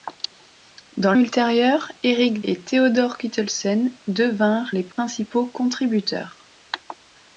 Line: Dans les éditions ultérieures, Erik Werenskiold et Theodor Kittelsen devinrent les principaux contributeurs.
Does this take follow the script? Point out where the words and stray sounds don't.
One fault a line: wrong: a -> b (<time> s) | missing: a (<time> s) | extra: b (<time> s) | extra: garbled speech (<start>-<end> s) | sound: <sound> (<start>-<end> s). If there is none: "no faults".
missing: les éditions (1.1 s)
missing: Werenskiold (2.4 s)
sound: dropout (4.9-5.0 s)